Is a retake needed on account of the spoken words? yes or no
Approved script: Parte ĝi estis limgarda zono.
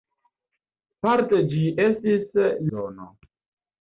yes